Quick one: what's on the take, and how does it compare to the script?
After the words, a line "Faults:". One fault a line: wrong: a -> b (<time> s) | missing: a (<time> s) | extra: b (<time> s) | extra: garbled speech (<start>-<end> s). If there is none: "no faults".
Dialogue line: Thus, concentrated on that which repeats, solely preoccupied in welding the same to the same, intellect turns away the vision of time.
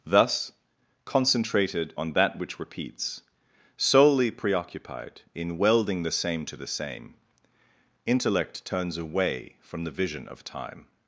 Thus, concentrated on that which repeats, solely preoccupied in welding the same to the same, intellect turns away from the vision of time.
Faults:
extra: from (9.6 s)